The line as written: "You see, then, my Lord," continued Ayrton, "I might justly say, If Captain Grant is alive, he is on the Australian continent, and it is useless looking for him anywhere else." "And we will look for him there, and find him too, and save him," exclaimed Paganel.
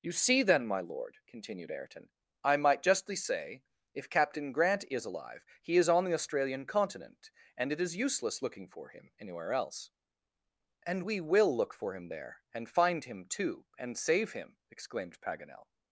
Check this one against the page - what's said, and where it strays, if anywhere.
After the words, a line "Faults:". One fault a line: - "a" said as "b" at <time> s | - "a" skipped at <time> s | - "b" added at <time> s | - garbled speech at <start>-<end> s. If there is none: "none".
"You see, then, my Lord," continued Ayrton, "I might justly say, If Captain Grant is alive, he is on the Australian continent, and it is useless looking for him anywhere else." "And we will look for him there, and find him too, and save him," exclaimed Paganel.
Faults:
none